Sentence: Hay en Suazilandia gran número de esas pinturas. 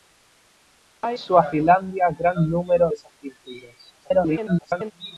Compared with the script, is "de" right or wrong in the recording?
wrong